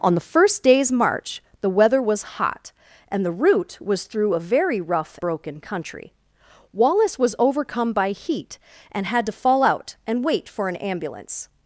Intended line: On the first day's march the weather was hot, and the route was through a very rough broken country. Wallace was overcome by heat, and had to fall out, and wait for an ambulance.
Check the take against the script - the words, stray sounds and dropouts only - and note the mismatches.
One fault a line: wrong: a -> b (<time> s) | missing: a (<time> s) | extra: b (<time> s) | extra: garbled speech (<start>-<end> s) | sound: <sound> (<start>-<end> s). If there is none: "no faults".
no faults